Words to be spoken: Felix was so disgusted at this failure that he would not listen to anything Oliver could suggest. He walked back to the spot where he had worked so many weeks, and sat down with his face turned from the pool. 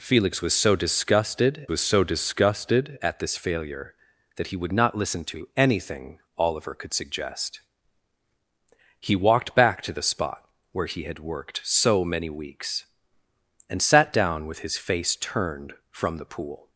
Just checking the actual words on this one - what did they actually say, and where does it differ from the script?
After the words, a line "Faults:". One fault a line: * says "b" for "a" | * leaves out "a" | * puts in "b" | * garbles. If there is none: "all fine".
Felix was so disgusted was so disgusted at this failure that he would not listen to anything Oliver could suggest. He walked back to the spot where he had worked so many weeks, and sat down with his face turned from the pool.
Faults:
* puts in "was so disgusted"